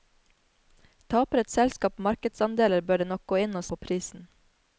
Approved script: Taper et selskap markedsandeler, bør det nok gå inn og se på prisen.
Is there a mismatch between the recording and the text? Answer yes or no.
yes